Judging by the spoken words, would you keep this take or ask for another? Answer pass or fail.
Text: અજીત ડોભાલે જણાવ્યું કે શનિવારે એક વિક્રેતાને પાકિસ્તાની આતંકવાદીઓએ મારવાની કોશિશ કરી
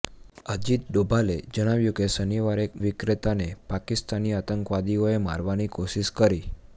pass